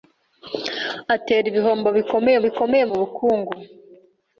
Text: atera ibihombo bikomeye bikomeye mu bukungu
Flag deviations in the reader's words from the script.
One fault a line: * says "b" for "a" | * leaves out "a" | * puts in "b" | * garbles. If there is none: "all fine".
all fine